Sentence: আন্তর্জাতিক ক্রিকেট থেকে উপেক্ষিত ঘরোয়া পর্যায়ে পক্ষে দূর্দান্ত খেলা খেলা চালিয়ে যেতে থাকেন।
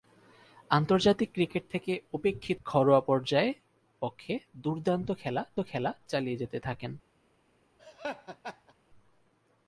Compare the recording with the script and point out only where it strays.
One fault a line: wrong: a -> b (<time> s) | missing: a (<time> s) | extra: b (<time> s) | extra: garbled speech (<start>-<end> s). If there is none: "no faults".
no faults